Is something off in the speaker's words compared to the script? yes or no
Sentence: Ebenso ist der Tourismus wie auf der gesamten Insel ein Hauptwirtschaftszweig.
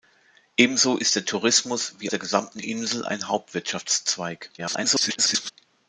yes